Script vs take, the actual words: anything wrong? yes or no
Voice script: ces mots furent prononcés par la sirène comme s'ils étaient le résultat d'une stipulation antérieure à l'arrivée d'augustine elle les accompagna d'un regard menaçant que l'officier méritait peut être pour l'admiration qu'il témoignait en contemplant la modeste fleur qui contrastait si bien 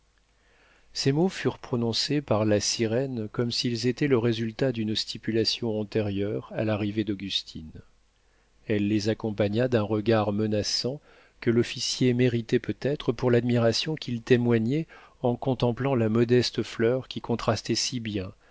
no